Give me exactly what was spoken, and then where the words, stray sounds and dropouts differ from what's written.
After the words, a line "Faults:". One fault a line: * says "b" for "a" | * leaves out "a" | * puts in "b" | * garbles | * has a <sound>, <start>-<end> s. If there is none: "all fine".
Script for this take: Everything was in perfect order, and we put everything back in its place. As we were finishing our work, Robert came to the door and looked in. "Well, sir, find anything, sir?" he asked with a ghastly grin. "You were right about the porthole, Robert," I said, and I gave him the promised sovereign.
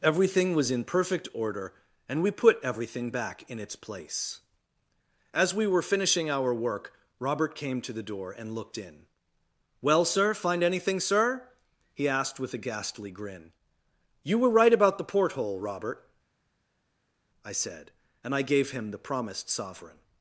Everything was in perfect order, and we put everything back in its place. As we were finishing our work, Robert came to the door and looked in. "Well, sir, find anything, sir?" he asked with a ghastly grin. "You were right about the porthole, Robert," I said, and I gave him the promised sovereign.
Faults:
all fine